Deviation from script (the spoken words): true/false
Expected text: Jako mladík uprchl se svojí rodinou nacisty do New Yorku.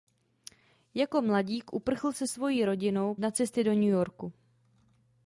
false